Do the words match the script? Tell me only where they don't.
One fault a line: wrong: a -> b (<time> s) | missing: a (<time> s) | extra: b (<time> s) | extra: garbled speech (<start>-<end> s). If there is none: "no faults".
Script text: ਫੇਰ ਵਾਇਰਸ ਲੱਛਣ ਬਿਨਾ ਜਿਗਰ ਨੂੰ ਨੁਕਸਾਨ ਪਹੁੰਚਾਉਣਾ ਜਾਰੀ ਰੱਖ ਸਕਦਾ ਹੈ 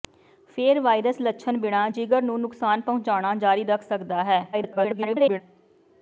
extra: garbled speech (4.5-5.4 s)